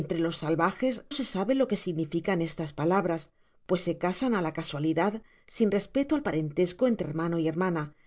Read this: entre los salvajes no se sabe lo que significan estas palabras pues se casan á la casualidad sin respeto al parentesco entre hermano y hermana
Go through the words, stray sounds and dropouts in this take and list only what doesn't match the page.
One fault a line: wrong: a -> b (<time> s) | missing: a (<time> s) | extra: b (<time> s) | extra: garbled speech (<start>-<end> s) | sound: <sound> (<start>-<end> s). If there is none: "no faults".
missing: no (1.1 s)